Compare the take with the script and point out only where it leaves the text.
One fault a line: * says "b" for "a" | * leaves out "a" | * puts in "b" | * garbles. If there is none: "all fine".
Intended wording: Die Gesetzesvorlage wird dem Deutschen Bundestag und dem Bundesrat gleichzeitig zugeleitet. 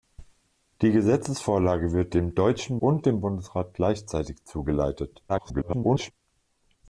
* leaves out "Bundestag"
* garbles